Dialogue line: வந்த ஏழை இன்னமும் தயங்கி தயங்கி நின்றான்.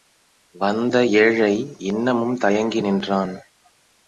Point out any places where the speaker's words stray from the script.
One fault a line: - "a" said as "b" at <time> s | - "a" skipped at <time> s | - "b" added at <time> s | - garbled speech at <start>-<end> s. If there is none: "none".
- "தயங்கி" skipped at 2.8 s